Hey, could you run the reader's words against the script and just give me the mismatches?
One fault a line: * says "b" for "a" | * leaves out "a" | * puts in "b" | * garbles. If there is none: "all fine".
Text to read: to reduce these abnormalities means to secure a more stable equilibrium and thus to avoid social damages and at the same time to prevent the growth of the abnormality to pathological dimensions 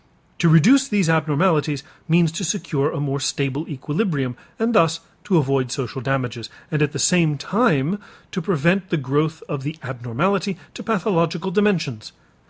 all fine